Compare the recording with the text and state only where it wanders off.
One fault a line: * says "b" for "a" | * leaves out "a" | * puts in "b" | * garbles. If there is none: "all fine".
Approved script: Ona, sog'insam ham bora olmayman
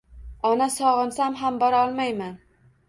all fine